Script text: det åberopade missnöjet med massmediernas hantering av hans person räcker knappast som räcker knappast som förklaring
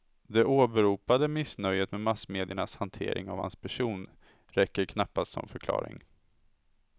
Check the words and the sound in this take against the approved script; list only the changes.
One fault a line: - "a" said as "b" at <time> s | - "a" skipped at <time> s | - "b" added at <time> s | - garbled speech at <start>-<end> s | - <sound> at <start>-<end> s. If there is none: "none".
- "räcker knappast som" skipped at 5.5 s